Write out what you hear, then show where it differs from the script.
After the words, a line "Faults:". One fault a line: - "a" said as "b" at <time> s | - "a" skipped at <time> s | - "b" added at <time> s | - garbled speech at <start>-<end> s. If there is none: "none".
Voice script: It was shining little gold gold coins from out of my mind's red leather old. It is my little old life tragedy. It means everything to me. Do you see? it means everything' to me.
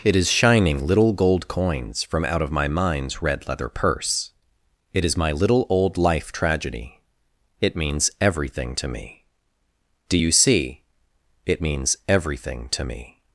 It is shining little gold coins from out of my mind's red leather purse. It is my little old life tragedy. It means everything to me. Do you see? it means everything' to me.
Faults:
- "was" said as "is" at 0.1 s
- "gold" skipped at 1.5 s
- "old" said as "purse" at 3.7 s